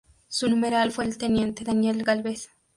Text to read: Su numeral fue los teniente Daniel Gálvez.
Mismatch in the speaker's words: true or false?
true